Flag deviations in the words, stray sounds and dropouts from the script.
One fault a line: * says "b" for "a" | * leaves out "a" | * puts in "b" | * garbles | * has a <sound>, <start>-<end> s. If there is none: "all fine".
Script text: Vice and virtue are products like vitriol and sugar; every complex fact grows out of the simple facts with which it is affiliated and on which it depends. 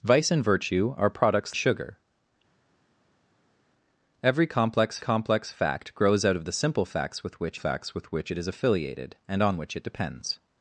* leaves out "like vitriol and"
* puts in "complex"
* puts in "facts with which"